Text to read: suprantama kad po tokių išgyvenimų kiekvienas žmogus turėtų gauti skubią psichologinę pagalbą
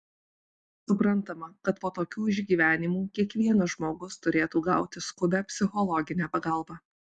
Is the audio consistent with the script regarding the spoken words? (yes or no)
yes